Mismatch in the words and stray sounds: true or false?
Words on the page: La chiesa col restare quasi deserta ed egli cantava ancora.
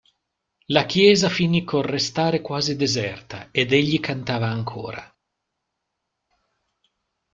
true